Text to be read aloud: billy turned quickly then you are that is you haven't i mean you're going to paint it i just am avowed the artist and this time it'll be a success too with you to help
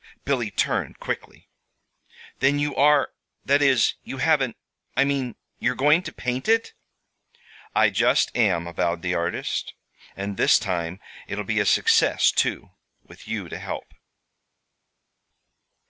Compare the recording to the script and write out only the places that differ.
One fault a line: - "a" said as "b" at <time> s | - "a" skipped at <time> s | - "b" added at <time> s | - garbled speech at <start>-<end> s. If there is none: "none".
none